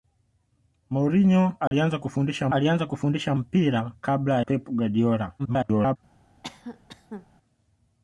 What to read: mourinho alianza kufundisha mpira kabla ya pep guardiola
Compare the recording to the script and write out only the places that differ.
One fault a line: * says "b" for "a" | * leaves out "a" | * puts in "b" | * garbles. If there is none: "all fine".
* puts in "alianza kufundisha"
* leaves out "ya"
* garbles